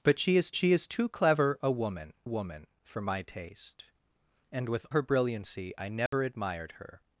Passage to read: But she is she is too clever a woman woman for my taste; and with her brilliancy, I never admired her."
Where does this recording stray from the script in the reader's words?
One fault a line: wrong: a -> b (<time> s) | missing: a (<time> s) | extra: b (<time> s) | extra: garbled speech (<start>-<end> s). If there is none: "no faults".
no faults